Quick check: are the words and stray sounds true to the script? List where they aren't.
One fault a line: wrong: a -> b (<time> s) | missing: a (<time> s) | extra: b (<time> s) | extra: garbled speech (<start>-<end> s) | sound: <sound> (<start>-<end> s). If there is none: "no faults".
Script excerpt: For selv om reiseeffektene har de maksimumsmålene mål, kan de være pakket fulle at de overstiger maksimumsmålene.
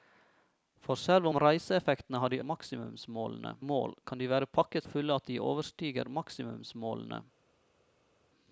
no faults